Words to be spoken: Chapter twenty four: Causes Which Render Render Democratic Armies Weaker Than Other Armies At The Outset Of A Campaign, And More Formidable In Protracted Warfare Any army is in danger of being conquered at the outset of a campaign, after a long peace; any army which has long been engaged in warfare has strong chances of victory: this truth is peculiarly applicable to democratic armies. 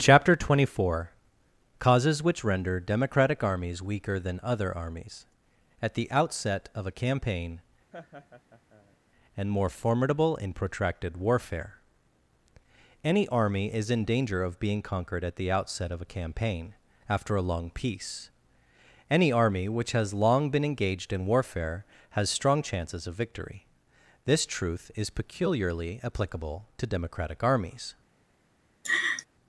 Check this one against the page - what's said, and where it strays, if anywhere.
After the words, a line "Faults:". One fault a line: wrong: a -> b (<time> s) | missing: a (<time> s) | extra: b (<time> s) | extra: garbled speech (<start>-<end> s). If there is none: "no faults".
Chapter twenty four: Causes Which Render Democratic Armies Weaker Than Other Armies At The Outset Of A Campaign, And More Formidable In Protracted Warfare Any army is in danger of being conquered at the outset of a campaign, after a long peace; any army which has long been engaged in warfare has strong chances of victory: this truth is peculiarly applicable to democratic armies.
Faults:
missing: Render (2.8 s)